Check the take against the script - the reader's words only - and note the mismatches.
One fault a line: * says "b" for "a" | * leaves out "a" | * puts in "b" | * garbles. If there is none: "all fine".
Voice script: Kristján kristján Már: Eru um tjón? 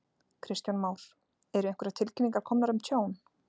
* leaves out "kristján"
* puts in "einhverjar tilkynningar komnar"